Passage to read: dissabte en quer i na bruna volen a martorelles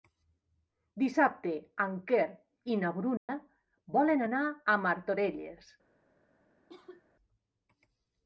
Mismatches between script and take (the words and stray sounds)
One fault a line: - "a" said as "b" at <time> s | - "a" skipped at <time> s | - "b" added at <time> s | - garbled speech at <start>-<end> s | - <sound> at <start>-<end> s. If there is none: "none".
- dropout at 3.2-3.3 s
- "anar" added at 4.3 s
- cough at 6.7-7.0 s